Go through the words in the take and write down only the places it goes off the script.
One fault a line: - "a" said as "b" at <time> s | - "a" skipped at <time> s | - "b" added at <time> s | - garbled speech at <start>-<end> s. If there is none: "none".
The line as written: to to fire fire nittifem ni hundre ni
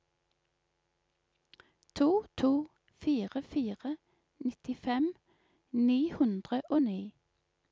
- "og" added at 6.7 s